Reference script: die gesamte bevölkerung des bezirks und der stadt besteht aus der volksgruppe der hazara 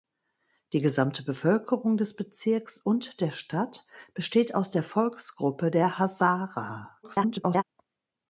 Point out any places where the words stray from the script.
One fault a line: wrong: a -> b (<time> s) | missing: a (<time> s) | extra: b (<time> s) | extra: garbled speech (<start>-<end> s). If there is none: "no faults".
extra: garbled speech (7.0-7.6 s)